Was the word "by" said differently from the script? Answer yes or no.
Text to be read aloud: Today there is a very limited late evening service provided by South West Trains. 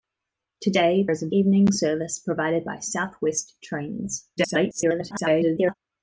no